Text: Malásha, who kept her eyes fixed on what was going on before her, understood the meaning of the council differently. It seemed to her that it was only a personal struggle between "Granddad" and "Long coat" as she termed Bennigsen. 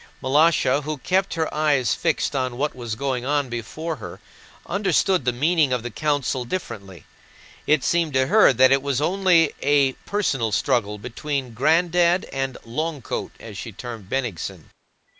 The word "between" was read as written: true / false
true